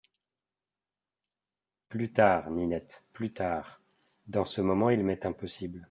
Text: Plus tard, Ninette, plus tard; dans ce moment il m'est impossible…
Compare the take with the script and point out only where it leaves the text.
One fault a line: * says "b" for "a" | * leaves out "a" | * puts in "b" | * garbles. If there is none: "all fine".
all fine